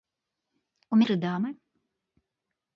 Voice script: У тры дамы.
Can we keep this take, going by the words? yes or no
yes